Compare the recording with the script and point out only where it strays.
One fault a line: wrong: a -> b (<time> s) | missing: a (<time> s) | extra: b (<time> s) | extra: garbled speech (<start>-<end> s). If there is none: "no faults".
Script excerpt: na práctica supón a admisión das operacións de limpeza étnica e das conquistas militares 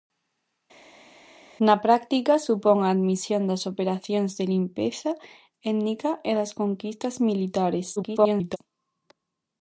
extra: garbled speech (8.0-8.6 s)